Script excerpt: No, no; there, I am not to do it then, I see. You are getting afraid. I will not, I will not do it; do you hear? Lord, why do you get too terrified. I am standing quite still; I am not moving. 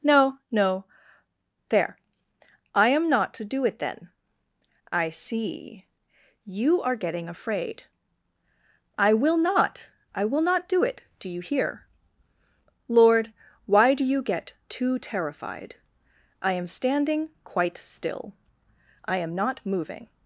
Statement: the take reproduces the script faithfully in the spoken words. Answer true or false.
true